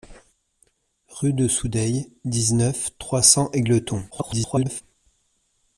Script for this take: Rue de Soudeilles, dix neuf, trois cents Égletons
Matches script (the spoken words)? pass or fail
fail